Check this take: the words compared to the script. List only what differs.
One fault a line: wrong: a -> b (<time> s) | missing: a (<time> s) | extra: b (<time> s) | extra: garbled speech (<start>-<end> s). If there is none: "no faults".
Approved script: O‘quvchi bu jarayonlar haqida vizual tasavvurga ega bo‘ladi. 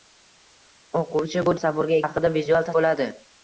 wrong: jarayonlar -> tasavvurga (1.6 s)
missing: tasavvurga ega (2.7 s)